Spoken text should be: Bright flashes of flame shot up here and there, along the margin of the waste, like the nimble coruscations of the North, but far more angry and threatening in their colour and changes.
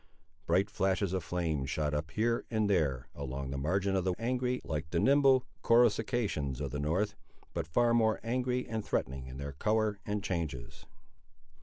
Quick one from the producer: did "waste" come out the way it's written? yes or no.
no